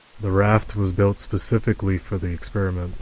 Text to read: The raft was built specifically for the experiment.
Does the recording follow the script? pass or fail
pass